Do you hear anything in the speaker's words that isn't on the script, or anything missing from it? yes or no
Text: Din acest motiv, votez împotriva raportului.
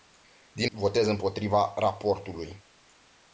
yes